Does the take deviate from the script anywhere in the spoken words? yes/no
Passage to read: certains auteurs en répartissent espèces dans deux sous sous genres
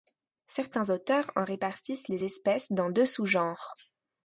yes